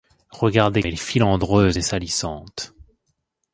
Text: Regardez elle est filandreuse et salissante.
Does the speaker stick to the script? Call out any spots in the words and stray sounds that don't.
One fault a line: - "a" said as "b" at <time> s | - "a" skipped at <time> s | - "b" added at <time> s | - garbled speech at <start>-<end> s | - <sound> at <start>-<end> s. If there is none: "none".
none